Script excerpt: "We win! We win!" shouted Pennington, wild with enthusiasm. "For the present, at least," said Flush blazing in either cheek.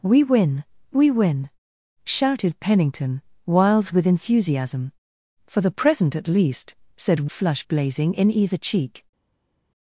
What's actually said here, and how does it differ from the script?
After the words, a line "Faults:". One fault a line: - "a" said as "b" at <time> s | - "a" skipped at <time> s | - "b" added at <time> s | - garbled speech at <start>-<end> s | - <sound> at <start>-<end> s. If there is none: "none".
"We win! We win!" shouted Pennington, wild with enthusiasm. "For the present, at least," said Flush blazing in either cheek.
Faults:
none